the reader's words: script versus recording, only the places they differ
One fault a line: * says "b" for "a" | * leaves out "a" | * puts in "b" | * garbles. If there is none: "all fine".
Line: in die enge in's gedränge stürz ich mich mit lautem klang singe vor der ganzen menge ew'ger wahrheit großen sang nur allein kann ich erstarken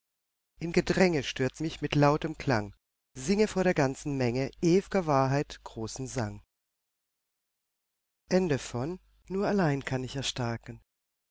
* leaves out "die enge in's"
* leaves out "ich"